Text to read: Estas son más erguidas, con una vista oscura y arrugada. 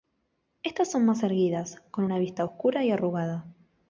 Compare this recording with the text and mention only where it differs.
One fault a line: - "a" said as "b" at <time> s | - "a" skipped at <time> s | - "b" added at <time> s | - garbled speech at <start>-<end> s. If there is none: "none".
none